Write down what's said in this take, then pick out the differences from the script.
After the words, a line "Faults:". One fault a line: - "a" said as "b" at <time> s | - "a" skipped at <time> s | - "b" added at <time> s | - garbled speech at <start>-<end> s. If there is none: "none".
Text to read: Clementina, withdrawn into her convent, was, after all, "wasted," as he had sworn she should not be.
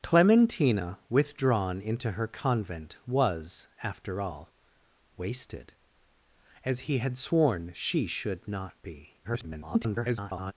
Clementina, withdrawn into her convent, was, after all, "wasted," as he had sworn she should not be. [garbled]
Faults:
- garbled speech at 9.2-10.5 s